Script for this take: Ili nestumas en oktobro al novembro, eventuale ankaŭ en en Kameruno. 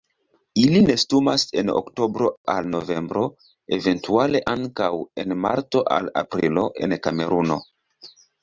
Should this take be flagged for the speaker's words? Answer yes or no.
yes